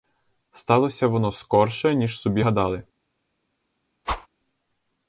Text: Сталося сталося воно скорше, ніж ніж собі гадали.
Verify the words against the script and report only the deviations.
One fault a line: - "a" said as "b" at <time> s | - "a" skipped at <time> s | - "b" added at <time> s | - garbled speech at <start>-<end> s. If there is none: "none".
- "сталося" skipped at 1.1 s
- "ніж" skipped at 2.2 s